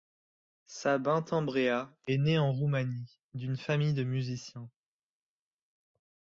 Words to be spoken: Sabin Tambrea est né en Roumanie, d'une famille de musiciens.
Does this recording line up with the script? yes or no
yes